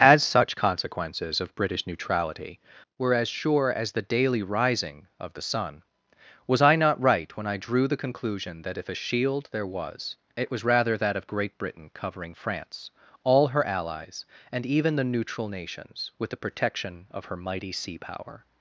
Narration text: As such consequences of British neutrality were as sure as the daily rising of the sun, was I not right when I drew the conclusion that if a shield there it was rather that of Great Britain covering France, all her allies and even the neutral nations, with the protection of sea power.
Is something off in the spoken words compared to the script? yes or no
yes